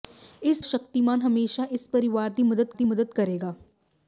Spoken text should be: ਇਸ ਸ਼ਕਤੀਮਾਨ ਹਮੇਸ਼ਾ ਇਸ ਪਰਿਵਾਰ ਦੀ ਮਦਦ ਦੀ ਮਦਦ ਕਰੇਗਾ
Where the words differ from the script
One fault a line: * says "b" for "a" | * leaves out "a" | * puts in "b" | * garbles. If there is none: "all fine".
all fine